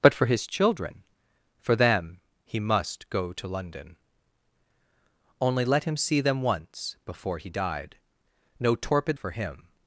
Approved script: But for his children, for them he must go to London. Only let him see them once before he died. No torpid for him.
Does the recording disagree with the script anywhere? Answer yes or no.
no